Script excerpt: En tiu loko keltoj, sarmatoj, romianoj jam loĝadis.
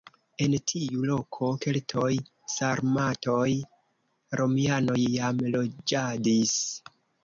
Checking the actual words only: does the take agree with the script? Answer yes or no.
yes